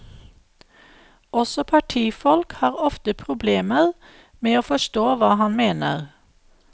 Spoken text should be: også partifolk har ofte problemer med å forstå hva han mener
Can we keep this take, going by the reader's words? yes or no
yes